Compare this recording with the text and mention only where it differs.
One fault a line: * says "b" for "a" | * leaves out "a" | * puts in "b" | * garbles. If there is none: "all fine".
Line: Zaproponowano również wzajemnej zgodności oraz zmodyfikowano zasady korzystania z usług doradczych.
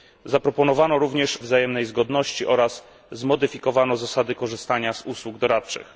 all fine